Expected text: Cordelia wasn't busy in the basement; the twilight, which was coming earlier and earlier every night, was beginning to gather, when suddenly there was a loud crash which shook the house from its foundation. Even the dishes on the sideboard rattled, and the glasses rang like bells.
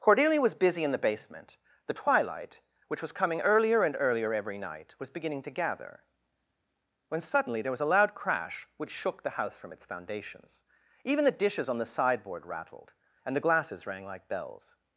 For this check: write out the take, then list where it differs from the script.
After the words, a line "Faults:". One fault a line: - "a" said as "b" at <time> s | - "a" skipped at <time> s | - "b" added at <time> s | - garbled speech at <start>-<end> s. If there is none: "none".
Cordelia was busy in the basement; the twilight, which was coming earlier and earlier every night, was beginning to gather, when suddenly there was a loud crash which shook the house from its foundations. Even the dishes on the sideboard rattled, and the glasses rang like bells.
Faults:
- "wasn't" said as "was" at 0.4 s
- "foundation" said as "foundations" at 9.8 s